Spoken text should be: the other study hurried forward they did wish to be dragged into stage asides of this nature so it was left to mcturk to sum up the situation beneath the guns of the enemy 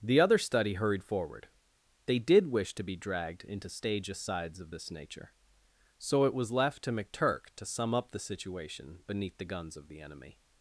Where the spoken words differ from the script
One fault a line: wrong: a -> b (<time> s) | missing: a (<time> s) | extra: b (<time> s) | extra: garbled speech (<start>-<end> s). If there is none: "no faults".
no faults